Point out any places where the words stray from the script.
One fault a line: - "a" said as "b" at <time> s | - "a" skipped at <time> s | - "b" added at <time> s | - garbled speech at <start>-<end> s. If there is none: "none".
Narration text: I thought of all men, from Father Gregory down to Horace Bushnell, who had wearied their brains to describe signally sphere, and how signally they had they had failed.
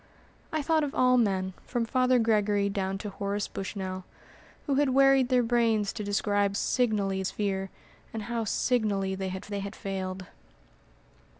none